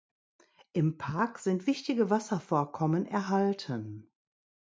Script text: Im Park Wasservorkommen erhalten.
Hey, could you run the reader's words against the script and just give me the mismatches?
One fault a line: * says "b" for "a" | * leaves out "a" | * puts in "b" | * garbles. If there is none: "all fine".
* puts in "sind wichtige"